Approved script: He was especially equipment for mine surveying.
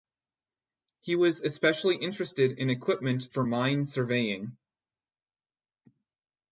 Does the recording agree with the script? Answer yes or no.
no